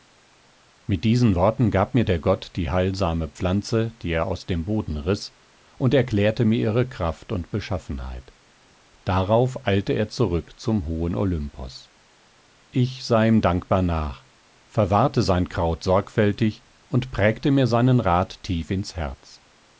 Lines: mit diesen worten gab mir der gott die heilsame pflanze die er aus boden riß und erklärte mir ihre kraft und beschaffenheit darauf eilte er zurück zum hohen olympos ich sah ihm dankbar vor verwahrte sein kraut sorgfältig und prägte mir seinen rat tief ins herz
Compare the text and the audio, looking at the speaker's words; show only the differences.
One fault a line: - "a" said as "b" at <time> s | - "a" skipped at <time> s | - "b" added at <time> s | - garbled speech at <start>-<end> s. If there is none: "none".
- "dem" added at 4.5 s
- "vor" said as "nach" at 13.8 s